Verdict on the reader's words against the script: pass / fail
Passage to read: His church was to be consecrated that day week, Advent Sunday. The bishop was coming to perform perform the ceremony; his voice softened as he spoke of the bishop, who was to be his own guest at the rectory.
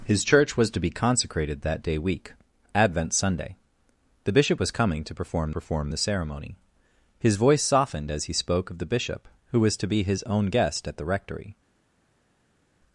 pass